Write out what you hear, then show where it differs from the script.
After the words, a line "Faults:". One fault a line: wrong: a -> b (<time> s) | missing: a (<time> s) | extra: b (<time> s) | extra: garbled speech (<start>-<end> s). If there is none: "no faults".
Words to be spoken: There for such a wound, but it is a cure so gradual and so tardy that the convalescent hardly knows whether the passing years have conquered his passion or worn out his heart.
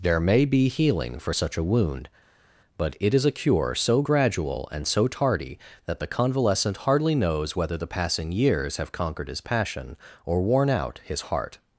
There may be healing for such a wound, but it is a cure so gradual and so tardy that the convalescent hardly knows whether the passing years have conquered his passion or worn out his heart.
Faults:
extra: may be healing (0.2 s)